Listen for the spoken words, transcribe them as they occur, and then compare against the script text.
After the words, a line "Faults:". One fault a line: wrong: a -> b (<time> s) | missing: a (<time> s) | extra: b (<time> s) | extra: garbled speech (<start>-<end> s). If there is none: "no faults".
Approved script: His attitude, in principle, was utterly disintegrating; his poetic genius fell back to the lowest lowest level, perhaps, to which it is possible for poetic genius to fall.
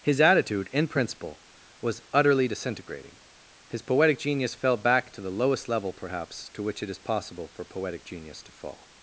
His attitude, in principle, was utterly disintegrating; his poetic genius fell back to the lowest level, perhaps, to which it is possible for poetic genius to fall.
Faults:
missing: lowest (5.7 s)